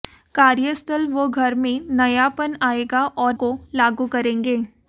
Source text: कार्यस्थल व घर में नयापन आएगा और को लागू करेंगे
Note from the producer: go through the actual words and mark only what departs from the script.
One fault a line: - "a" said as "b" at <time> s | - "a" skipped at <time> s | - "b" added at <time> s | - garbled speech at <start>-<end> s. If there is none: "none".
none